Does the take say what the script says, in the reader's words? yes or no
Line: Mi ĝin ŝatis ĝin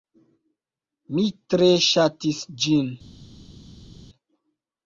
no